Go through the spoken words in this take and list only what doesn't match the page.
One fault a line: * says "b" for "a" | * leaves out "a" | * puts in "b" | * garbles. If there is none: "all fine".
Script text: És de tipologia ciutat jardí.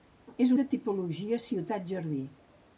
all fine